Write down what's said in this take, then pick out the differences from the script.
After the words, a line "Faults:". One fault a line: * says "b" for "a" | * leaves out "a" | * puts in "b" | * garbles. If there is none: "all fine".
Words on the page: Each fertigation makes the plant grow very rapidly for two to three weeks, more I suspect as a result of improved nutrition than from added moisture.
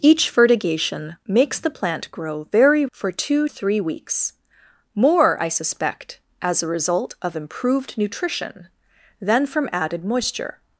Each fertigation makes the plant grow very for two three weeks, more I suspect as a result of improved nutrition than from added moisture.
Faults:
* leaves out "rapidly"
* leaves out "to"